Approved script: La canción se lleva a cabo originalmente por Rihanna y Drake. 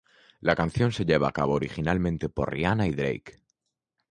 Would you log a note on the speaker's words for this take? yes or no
no